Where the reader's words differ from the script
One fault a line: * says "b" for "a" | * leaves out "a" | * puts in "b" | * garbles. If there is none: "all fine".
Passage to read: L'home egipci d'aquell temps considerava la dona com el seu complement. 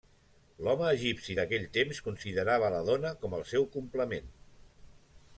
all fine